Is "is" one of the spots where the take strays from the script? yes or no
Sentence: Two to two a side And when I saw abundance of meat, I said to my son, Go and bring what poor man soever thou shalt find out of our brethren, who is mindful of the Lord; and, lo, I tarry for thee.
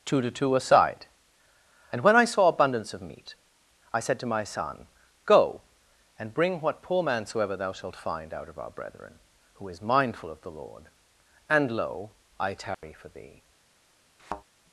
no